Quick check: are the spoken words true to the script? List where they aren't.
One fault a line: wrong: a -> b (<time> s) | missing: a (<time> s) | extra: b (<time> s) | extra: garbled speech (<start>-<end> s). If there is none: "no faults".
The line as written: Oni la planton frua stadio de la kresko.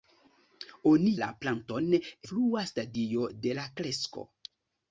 no faults